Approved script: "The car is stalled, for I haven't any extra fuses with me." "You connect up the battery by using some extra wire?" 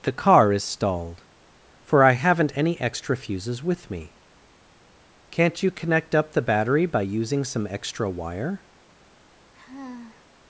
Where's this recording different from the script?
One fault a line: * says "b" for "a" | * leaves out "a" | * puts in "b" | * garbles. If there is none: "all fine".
* puts in "Can't"